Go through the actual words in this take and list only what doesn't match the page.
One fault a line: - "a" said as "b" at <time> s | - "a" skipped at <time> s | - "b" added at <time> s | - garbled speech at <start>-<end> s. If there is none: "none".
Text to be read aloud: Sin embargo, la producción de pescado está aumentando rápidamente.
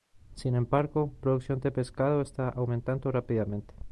- "la" skipped at 1.1 s